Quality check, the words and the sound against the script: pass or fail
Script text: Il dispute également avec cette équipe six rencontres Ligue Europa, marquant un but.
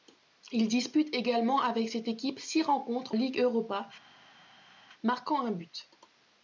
pass